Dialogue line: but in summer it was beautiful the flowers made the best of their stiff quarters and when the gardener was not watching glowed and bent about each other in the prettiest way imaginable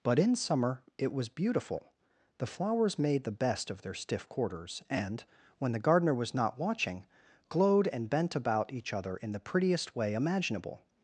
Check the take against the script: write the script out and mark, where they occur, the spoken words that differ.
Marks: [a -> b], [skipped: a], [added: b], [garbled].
but in summer it was beautiful the flowers made the best of their stiff quarters and when the gardener was not watching glowed and bent about each other in the prettiest way imaginable